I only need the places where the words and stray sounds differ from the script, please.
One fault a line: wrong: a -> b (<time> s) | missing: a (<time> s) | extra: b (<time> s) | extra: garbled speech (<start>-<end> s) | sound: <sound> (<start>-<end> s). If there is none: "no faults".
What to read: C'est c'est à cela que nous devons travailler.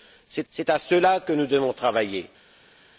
no faults